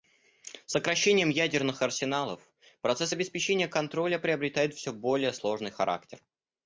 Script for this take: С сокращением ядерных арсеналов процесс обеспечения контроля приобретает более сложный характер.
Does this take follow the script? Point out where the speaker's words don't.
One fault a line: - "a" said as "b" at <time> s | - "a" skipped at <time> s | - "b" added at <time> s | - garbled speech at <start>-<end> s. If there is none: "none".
- "все" added at 4.7 s